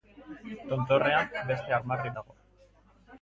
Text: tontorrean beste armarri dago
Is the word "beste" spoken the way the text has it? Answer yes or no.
yes